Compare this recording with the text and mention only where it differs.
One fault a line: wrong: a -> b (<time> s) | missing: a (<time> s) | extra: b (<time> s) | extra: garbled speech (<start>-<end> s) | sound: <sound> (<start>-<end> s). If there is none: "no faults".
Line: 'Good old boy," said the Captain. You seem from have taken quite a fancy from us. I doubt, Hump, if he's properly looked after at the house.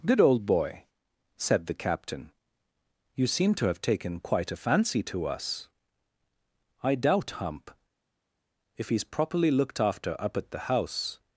wrong: from -> to (3.5 s)
wrong: from -> to (5.0 s)
extra: up (10.2 s)